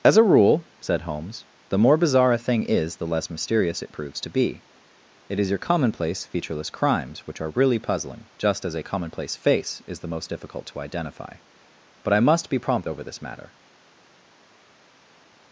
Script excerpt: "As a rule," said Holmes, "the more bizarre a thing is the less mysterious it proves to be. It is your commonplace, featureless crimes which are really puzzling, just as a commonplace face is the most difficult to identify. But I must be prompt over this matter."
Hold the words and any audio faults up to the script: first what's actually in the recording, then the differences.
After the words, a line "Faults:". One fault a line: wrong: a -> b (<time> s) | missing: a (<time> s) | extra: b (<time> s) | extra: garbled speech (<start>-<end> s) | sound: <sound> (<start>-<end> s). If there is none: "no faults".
"As a rule," said Holmes, "the more bizarre a thing is the less mysterious it proves to be. It is your commonplace, featureless crimes which are really puzzling, just as a commonplace face is the most difficult to identify. But I must be prompt over this matter."
Faults:
no faults